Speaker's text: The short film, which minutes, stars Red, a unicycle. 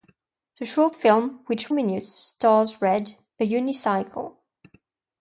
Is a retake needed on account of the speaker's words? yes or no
no